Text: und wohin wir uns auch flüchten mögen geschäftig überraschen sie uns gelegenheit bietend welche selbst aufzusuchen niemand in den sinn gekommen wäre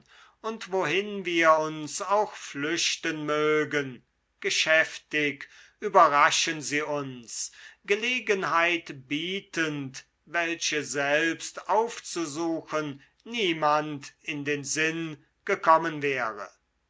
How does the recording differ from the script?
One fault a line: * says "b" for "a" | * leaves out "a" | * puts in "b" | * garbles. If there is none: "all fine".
all fine